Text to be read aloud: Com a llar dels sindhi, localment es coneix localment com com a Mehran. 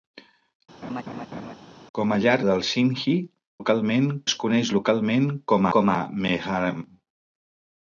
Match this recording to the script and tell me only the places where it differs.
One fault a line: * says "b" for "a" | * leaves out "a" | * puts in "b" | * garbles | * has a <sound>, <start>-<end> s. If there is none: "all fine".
* has a laugh, 0.8-1.5 s